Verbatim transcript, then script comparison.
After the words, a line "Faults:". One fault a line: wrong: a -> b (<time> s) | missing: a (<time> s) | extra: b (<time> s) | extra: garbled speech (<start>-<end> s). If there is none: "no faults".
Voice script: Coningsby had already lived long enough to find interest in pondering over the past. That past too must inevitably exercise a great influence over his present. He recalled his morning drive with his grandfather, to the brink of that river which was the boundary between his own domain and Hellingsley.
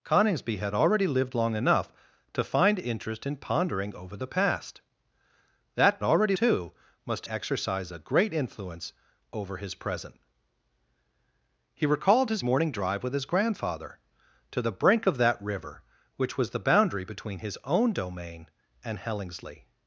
Coningsby had already lived long enough to find interest in pondering over the past. That already too must exercise a great influence over his present. He recalled his morning drive with his grandfather, to the brink of that river which was the boundary between his own domain and Hellingsley.
Faults:
wrong: past -> already (6.0 s)
missing: inevitably (7.3 s)